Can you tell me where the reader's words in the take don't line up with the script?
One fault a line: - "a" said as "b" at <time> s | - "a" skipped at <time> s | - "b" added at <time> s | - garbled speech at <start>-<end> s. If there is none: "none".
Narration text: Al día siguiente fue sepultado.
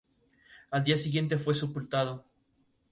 none